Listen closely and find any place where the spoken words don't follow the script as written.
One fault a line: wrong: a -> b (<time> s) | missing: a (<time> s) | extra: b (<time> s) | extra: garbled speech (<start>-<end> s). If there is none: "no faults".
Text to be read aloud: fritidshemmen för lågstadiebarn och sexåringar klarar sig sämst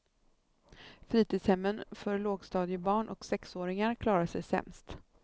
no faults